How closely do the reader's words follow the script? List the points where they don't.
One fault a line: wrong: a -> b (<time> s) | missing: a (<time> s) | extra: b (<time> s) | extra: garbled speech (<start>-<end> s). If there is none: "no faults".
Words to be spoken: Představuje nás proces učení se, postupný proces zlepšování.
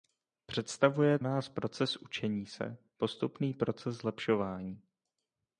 no faults